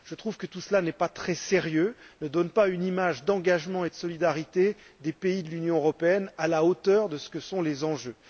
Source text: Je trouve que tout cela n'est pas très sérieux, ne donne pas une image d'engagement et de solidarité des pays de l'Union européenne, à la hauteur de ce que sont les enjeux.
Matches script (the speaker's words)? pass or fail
pass